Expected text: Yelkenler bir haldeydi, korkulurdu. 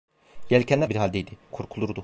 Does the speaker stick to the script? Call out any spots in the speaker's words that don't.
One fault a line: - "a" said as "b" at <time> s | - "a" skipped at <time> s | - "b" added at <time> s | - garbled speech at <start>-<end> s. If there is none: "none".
none